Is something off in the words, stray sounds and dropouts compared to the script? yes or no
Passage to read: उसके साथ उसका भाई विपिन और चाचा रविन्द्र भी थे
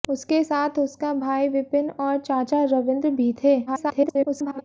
yes